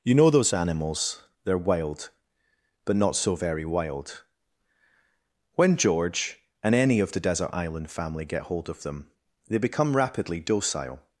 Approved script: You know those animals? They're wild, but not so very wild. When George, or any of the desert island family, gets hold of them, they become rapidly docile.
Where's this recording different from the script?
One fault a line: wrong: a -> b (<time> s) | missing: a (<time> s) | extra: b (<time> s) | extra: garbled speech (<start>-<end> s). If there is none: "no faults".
wrong: or -> and (6.6 s)
wrong: gets -> get (8.2 s)